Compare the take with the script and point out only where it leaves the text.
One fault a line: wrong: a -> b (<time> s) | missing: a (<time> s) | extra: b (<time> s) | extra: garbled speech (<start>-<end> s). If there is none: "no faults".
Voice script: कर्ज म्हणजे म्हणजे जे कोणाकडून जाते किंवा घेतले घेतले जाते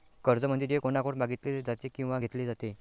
missing: म्हणजे (0.7 s)
extra: मागितले (1.2 s)
missing: घेतले (2.5 s)